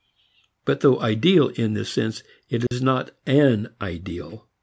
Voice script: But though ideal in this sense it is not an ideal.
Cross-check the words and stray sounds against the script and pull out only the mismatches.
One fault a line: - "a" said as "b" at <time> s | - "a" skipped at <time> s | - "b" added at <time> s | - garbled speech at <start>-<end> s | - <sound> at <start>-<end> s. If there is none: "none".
- dropout at 2.7-2.7 s